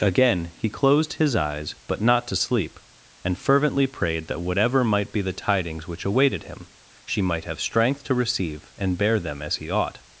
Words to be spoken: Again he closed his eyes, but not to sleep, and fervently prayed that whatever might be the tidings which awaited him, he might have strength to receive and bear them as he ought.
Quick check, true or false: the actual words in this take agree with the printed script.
false